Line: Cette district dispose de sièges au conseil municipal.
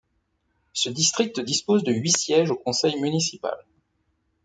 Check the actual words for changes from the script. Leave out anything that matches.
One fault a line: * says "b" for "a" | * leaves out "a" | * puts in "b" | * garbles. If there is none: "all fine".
* says "Ce" for "Cette"
* puts in "huit"